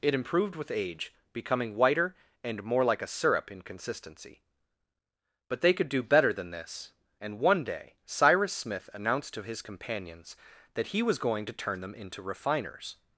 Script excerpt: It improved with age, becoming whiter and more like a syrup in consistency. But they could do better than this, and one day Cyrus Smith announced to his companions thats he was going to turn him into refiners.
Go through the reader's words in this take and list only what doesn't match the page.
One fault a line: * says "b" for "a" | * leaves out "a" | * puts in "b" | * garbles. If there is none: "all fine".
* says "that" for "thats"
* says "them" for "him"